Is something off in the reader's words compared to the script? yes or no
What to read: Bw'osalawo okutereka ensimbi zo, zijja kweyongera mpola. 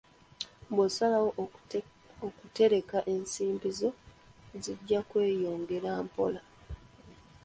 no